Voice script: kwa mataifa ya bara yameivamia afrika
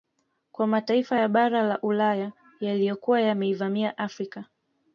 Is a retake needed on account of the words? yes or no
yes